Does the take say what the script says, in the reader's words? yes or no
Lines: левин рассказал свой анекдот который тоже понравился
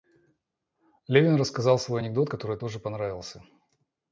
yes